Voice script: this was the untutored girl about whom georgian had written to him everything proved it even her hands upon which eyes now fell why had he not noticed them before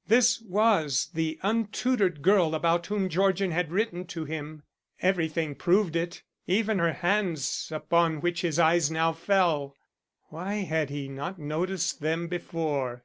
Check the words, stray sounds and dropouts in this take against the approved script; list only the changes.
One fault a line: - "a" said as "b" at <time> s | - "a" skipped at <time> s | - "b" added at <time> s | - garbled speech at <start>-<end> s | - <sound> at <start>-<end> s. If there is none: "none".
- "his" added at 8.4 s